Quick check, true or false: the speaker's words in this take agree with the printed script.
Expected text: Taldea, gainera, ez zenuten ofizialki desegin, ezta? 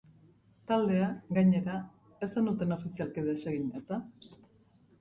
true